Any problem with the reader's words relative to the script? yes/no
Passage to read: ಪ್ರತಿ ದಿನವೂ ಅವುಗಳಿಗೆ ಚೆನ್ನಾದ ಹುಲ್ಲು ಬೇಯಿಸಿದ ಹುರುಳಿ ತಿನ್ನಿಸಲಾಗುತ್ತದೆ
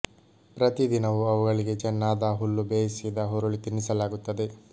no